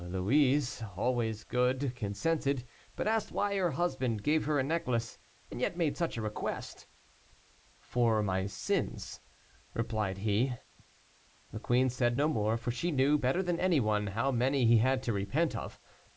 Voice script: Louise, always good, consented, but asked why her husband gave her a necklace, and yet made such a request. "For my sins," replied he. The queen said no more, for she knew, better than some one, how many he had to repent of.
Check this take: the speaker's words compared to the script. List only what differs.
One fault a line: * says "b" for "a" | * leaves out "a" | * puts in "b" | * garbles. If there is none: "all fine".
* says "any" for "some"